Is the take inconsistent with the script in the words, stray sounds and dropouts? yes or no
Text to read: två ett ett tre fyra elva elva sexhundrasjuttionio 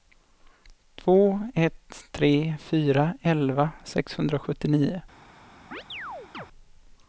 yes